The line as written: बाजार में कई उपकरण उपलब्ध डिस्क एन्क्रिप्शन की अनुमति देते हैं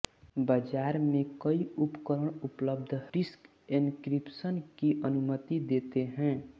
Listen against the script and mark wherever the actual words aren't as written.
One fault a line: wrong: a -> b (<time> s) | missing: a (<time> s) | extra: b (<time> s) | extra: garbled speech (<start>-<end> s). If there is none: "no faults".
no faults